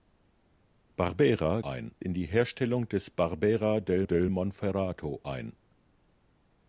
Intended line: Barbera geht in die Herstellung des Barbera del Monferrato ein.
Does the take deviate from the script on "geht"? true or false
true